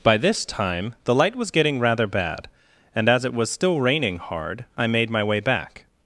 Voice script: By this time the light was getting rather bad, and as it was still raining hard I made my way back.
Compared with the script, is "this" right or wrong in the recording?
right